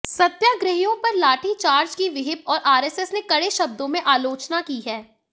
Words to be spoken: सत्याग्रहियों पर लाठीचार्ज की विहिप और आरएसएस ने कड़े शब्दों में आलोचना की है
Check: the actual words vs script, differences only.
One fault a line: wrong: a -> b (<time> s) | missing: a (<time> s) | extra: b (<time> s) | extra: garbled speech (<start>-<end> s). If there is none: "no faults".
no faults